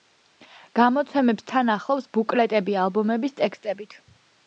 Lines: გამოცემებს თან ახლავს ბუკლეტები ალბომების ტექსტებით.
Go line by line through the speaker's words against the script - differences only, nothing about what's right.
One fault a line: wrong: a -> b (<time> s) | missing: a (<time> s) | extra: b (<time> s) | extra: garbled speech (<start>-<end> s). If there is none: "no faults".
no faults